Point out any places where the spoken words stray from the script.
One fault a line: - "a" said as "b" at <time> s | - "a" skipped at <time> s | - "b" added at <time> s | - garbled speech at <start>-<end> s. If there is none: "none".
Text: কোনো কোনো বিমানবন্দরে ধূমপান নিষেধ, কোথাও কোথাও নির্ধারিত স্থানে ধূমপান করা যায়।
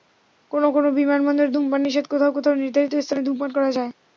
none